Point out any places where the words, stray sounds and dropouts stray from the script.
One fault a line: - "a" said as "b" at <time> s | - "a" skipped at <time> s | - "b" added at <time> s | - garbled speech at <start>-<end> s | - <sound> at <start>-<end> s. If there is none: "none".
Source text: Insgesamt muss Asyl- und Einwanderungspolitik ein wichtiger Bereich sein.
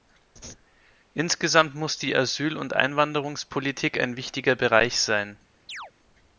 - "die" added at 2.0 s
- chirp at 5.7-5.9 s